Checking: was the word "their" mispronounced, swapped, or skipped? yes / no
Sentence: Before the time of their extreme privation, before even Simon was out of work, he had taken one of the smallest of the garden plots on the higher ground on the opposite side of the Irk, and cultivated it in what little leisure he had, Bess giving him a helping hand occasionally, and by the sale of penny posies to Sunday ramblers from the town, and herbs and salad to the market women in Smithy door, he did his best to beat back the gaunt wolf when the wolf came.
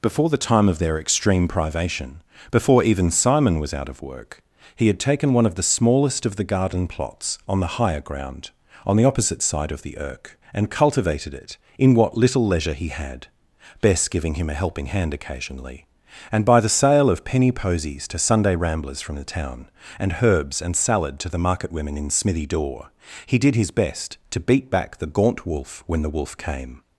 no